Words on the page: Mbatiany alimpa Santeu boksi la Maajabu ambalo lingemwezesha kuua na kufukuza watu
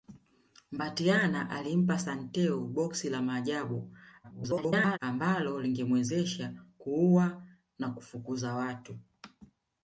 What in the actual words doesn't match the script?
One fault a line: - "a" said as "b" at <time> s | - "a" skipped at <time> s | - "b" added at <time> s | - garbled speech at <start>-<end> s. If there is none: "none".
- garbled speech at 4.2-5.0 s